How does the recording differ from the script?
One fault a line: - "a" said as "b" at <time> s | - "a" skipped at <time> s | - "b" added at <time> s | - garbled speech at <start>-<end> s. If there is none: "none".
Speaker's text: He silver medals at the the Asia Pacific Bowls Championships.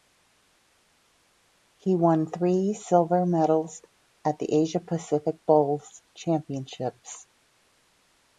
- "won three" added at 1.9 s
- "the" skipped at 4.5 s